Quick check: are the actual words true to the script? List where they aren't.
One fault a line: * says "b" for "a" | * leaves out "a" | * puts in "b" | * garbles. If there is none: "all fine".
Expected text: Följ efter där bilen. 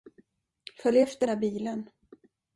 all fine